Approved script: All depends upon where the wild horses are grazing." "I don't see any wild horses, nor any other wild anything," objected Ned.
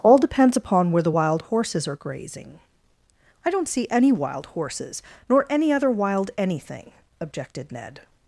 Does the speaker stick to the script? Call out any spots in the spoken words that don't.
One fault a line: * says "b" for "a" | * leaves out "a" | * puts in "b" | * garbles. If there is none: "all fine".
all fine